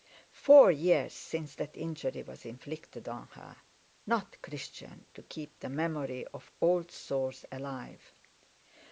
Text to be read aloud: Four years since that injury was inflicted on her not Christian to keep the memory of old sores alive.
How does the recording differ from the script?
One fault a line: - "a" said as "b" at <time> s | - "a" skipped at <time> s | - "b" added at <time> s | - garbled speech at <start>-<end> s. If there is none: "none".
none